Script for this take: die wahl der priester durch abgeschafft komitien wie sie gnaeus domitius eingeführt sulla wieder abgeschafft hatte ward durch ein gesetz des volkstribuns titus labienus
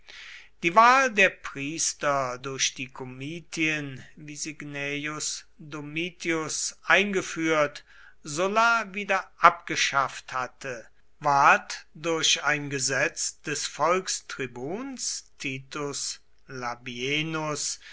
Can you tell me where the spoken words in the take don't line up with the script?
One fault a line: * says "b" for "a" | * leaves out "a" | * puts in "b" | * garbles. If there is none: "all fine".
* says "die" for "abgeschafft"